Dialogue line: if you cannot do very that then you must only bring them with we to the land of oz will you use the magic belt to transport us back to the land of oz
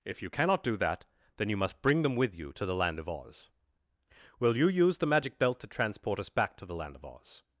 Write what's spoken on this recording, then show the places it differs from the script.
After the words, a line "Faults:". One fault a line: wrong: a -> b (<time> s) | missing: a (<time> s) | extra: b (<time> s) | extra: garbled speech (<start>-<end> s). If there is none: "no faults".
if you cannot do that then you must bring them with you to the land of oz will you use the magic belt to transport us back to the land of oz
Faults:
missing: very (0.8 s)
missing: only (1.8 s)
wrong: we -> you (2.4 s)